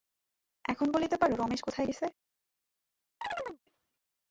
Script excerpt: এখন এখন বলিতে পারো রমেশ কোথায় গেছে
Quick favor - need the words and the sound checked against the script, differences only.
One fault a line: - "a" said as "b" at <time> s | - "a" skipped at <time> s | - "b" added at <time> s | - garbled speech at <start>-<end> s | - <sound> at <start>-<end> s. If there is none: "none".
- "এখন" skipped at 0.9 s
- chirp at 3.2-3.6 s